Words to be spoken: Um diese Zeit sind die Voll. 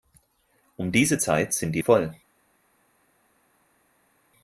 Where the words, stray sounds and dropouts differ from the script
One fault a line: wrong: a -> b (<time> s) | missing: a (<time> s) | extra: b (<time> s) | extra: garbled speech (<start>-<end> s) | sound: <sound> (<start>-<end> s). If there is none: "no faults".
no faults